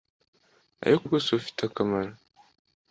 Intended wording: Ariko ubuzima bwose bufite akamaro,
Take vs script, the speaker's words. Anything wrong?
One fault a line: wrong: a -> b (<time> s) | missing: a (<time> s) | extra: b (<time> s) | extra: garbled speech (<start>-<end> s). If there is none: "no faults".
missing: ubuzima (1.0 s)